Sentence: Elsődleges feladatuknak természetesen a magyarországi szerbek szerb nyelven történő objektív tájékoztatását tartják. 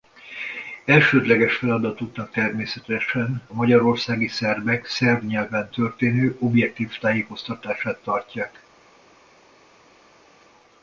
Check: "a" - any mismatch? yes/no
yes